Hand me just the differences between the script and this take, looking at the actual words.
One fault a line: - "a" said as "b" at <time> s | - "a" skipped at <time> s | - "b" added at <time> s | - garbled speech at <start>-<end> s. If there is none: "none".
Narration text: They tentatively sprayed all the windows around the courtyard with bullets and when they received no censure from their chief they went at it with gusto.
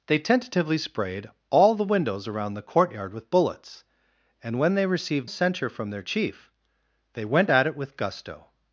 - "no" skipped at 5.3 s